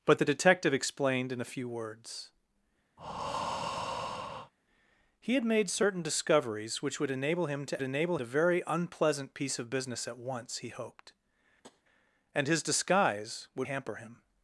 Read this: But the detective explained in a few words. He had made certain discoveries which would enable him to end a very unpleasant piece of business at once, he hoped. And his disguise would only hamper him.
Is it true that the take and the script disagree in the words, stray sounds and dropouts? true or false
true